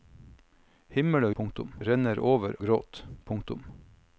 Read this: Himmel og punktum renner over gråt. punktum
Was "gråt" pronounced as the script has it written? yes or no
yes